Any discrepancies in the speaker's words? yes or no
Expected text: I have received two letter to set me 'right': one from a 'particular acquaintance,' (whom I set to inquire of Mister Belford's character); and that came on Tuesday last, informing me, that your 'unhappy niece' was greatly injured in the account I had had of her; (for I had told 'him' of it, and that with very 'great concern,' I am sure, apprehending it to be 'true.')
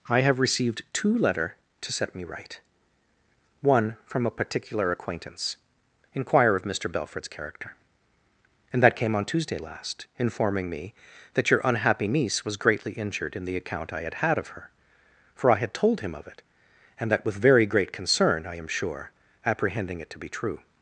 yes